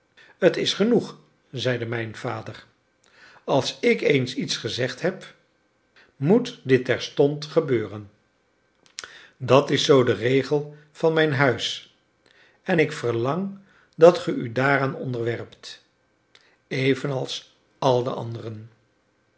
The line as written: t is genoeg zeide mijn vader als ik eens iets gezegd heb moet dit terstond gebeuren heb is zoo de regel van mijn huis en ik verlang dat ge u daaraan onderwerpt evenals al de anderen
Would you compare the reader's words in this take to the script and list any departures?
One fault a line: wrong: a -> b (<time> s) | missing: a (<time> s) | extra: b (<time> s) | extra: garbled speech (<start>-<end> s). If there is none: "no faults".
wrong: heb -> dat (9.4 s)